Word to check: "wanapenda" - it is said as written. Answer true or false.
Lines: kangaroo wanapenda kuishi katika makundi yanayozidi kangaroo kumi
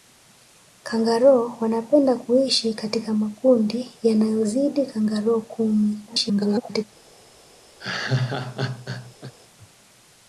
true